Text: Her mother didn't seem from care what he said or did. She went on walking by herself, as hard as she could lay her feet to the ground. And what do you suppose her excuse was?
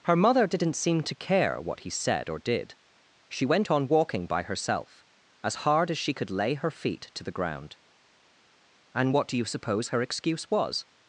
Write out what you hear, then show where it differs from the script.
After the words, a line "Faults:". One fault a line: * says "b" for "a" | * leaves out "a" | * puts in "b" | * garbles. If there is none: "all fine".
Her mother didn't seem to care what he said or did. She went on walking by herself, as hard as she could lay her feet to the ground. And what do you suppose her excuse was?
Faults:
* says "to" for "from"